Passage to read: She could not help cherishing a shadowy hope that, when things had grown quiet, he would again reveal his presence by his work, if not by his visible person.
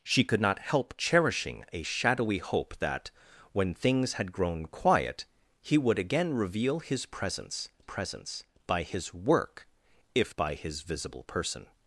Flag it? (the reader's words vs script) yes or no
yes